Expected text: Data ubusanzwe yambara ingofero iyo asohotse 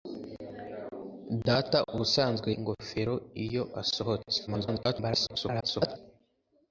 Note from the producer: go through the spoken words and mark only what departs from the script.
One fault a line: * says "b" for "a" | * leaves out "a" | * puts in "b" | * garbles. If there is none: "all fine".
* leaves out "yambara"
* garbles